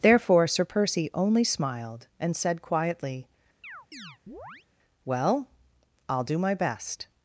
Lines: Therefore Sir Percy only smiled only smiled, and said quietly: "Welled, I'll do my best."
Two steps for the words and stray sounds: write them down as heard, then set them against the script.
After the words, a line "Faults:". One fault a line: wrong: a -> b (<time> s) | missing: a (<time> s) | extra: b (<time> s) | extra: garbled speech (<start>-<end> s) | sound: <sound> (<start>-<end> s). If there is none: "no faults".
Therefore Sir Percy only smiled, and said quietly: "Well, I'll do my best."
Faults:
missing: only smiled (2.1 s)
sound: chirp (3.6-4.7 s)
wrong: Welled -> Well (5.0 s)